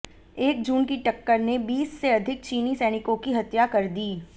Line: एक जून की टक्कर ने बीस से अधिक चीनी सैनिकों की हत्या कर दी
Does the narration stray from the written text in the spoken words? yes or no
no